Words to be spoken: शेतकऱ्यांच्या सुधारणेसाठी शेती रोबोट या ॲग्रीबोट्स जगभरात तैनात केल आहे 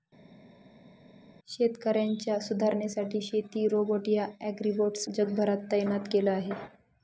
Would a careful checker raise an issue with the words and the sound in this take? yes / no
no